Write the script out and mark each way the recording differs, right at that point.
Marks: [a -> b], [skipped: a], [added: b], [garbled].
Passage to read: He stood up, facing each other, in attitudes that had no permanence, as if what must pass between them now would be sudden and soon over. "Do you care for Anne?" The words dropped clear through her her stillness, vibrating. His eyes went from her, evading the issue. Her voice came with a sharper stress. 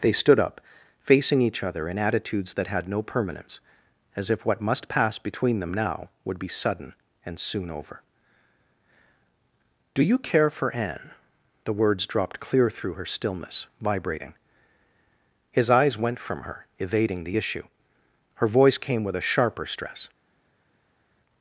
[He -> They] stood up, facing each other, in attitudes that had no permanence, as if what must pass between them now would be sudden and soon over. "Do you care for Anne?" The words dropped clear through her [skipped: her] stillness, vibrating. His eyes went from her, evading the issue. Her voice came with a sharper stress.